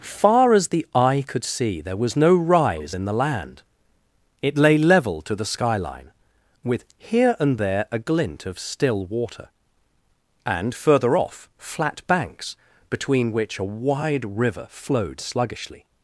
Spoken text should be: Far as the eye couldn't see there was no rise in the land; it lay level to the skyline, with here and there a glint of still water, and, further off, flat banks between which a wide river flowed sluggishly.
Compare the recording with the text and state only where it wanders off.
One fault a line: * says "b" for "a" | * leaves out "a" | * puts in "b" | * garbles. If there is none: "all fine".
* says "could" for "couldn't"